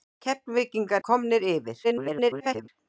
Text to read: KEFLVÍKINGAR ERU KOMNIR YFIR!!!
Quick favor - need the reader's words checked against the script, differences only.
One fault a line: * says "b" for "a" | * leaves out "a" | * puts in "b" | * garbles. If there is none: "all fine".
* leaves out "ERU"
* garbles